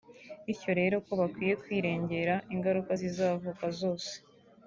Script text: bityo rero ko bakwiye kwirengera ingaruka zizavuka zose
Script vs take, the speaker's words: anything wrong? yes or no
no